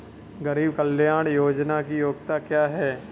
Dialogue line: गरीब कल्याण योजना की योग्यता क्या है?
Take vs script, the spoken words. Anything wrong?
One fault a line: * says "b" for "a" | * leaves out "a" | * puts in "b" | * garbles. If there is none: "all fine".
all fine